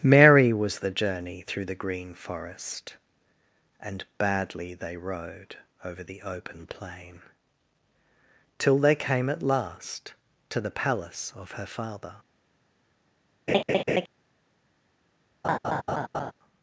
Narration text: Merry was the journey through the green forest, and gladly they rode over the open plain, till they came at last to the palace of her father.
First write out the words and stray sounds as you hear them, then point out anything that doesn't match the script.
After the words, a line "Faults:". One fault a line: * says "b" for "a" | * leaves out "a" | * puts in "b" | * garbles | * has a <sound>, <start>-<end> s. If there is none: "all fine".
Merry was the journey through the green forest, and badly they rode over the open plain, till they came at last to the palace of her father.
Faults:
* says "badly" for "gladly"
* has a laugh, 13.5-14.1 s
* has a laugh, 15.4-16.3 s